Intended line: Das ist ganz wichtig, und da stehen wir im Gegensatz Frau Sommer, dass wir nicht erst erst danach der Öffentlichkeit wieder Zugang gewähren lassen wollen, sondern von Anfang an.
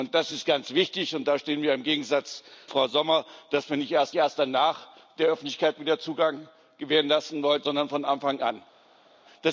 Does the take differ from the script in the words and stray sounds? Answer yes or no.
no